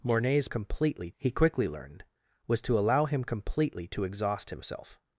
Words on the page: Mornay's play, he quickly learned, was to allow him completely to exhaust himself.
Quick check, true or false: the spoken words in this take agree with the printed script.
false